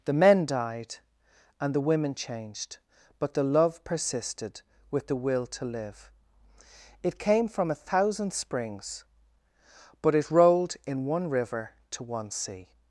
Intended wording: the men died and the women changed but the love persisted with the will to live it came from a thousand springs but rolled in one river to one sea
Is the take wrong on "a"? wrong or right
right